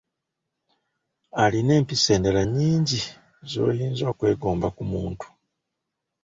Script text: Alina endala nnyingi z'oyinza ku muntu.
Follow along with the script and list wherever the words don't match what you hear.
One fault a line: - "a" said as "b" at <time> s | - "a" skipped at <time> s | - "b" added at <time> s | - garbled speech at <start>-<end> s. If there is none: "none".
- "empisa" added at 1.8 s
- "okwegomba" added at 4.1 s